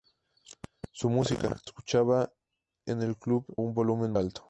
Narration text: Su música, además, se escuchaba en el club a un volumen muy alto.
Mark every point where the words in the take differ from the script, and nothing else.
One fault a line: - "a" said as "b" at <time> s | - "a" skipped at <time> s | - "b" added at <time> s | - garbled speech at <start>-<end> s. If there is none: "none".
- "además se" skipped at 1.6 s
- "a" skipped at 3.5 s
- "muy" skipped at 4.1 s